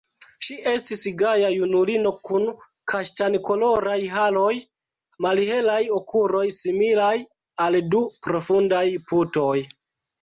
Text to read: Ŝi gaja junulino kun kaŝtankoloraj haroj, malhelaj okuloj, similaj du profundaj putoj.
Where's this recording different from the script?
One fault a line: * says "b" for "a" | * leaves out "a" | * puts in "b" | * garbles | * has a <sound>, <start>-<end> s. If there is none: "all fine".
* puts in "estis"
* puts in "al"